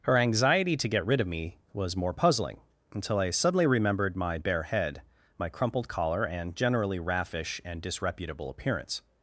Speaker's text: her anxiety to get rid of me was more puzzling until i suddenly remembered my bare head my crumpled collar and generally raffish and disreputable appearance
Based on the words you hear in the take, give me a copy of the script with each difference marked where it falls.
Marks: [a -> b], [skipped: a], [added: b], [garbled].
her anxiety to get rid of me was more puzzling until i suddenly remembered my bare head my crumpled collar and generally raffish and disreputable appearance